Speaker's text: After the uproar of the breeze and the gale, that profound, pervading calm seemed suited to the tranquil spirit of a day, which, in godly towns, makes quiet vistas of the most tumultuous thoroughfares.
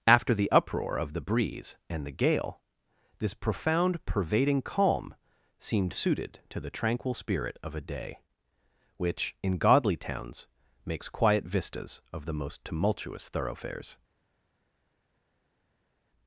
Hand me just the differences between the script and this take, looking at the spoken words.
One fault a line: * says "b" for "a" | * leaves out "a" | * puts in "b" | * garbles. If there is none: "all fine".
* says "this" for "that"